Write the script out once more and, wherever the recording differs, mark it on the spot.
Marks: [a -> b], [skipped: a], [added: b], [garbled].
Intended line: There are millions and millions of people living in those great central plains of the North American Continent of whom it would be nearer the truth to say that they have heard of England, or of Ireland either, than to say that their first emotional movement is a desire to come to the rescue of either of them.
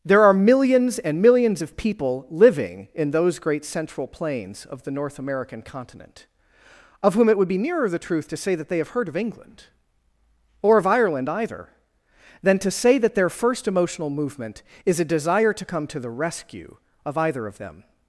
There are millions and millions of people living in those great central plains of the North American Continent of whom it would be nearer the truth to say that they have heard of England, or of Ireland either, than to say that their first emotional movement is a desire to come to the rescue of either of them.